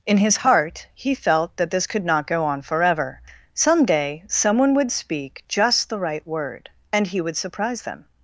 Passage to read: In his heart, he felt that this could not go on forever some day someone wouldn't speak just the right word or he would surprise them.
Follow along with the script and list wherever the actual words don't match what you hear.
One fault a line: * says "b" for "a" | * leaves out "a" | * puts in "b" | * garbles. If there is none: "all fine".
* says "would" for "wouldn't"
* says "and" for "or"